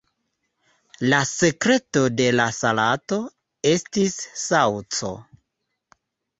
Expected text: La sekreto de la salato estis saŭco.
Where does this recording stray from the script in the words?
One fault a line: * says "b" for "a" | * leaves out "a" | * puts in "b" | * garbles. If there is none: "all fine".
all fine